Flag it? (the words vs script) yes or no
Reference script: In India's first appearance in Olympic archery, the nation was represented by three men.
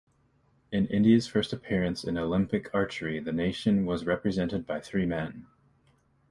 no